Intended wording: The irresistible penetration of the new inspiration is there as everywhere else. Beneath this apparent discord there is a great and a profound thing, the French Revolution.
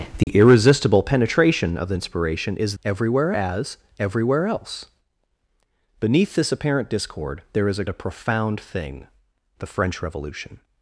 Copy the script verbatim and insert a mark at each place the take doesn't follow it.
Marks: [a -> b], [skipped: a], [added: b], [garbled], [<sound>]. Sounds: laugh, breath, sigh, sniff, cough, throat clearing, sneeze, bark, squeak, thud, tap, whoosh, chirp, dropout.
The [dropout] irresistible penetration of the [skipped: new] inspiration is [there -> everywhere] as everywhere else. Beneath this apparent discord there is a [skipped: great and] a profound thing, the French Revolution.